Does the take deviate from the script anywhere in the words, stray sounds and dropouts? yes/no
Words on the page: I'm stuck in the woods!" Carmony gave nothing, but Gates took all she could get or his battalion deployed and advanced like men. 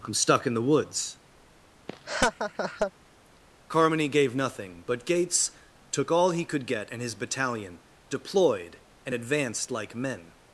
yes